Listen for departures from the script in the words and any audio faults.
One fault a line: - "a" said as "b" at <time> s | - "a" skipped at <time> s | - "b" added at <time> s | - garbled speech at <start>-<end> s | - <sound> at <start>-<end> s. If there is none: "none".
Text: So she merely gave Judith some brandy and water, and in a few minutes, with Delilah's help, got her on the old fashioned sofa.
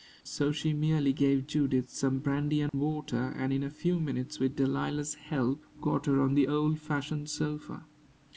- dropout at 2.7-2.7 s